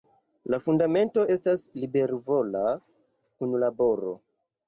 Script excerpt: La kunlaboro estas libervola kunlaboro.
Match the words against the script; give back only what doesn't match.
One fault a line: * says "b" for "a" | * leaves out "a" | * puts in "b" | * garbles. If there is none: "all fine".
* says "fundamento" for "kunlaboro"